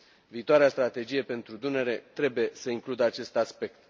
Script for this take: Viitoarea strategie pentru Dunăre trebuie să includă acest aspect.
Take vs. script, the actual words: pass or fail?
pass